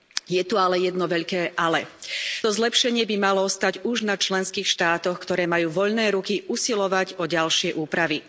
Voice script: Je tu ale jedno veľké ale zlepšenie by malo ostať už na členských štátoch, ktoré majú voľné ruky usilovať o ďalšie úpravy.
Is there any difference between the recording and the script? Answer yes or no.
no